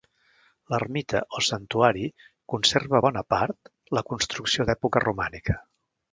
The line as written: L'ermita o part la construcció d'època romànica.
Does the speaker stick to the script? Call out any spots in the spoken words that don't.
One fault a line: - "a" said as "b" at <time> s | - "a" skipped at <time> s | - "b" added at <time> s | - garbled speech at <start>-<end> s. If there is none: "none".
- "santuari conserva bona" added at 1.5 s